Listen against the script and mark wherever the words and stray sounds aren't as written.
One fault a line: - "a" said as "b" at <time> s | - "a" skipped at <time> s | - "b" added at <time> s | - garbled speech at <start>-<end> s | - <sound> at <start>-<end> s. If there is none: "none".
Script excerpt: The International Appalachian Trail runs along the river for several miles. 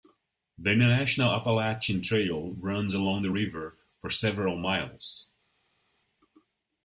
none